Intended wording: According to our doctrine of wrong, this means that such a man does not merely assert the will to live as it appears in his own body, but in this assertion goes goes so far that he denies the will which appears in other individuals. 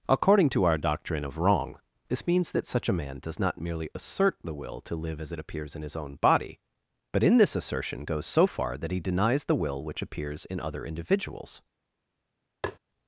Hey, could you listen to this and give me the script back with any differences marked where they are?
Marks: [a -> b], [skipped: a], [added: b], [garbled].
According to our doctrine of wrong, this means that such a man does not merely assert the will to live as it appears in his own body, but in this assertion goes [skipped: goes] so far that he denies the will which appears in other individuals.